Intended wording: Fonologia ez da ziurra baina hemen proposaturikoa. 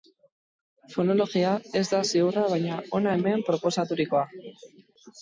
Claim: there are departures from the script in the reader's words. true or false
true